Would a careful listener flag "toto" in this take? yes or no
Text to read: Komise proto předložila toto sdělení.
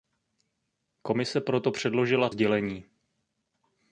yes